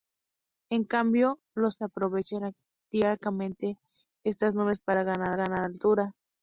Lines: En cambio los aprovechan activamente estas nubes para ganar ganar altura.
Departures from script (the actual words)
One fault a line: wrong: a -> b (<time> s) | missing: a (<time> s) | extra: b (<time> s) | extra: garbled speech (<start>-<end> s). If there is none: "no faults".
no faults